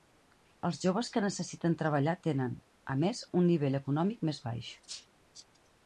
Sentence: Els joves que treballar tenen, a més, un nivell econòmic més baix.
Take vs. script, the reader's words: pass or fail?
fail